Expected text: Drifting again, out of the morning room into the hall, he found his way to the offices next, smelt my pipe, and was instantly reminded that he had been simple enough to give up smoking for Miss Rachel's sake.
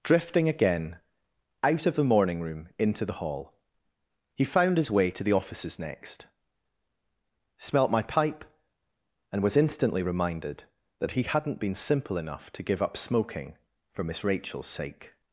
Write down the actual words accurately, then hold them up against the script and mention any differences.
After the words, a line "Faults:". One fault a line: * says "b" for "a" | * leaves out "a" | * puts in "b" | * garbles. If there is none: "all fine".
Drifting again, out of the morning room into the hall, he found his way to the offices next, smelt my pipe, and was instantly reminded that he hadn't been simple enough to give up smoking for Miss Rachel's sake.
Faults:
* says "hadn't" for "had"